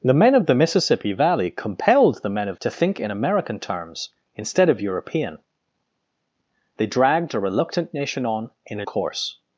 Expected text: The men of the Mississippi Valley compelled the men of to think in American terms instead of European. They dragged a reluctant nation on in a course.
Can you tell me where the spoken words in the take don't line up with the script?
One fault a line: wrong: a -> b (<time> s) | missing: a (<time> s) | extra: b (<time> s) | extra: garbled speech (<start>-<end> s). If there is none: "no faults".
no faults